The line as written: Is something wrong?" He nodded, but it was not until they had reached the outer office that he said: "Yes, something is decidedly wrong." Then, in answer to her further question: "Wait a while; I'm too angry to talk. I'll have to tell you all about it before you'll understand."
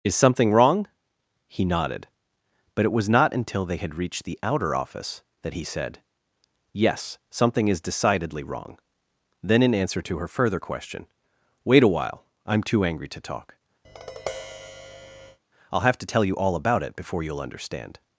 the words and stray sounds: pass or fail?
fail